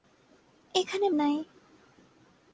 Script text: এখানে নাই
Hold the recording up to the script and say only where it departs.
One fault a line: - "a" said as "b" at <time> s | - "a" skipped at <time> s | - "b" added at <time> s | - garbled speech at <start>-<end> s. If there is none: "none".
none